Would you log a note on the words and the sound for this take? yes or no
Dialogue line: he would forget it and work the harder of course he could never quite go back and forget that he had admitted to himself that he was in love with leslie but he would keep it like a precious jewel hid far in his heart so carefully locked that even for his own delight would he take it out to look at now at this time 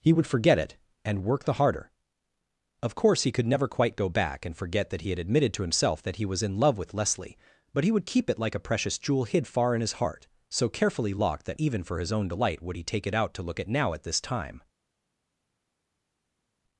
no